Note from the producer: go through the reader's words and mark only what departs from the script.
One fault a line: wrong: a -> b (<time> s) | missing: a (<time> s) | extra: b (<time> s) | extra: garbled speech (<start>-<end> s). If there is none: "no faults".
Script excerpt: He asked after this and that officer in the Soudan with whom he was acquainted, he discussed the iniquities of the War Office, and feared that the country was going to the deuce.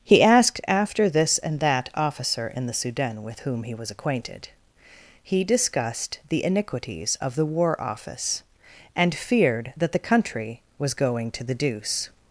no faults